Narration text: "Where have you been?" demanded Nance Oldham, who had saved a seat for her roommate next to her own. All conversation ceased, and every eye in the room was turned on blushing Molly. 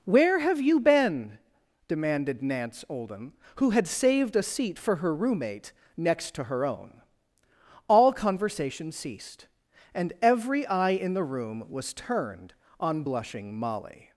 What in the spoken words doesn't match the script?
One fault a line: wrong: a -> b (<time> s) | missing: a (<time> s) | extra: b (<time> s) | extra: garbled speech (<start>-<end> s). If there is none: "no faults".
no faults